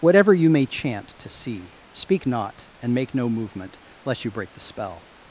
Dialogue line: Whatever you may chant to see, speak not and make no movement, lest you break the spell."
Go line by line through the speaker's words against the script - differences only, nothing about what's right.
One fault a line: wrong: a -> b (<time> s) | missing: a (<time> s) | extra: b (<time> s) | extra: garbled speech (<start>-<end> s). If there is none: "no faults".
no faults